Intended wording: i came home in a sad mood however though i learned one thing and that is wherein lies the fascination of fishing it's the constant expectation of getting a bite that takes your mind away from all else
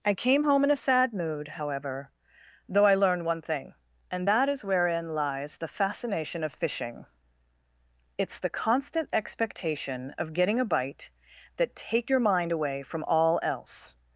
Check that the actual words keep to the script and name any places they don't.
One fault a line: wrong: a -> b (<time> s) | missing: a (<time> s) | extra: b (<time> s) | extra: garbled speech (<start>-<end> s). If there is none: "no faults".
wrong: takes -> take (11.8 s)